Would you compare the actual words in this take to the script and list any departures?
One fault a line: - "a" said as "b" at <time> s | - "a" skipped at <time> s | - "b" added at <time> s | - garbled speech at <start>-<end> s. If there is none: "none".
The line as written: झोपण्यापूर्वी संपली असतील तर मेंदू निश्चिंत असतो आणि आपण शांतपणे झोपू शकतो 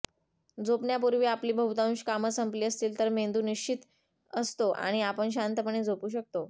- "आपली बहुतांश कामं" added at 1.2 s